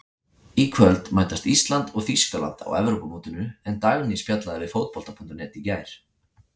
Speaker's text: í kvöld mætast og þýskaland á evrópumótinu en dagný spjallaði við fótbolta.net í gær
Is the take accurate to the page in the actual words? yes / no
no